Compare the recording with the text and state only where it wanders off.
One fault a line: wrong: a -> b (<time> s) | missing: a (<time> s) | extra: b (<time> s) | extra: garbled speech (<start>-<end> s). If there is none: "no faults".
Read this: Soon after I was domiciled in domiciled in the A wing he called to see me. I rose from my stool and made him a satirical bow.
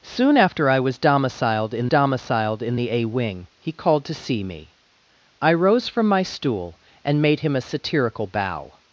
no faults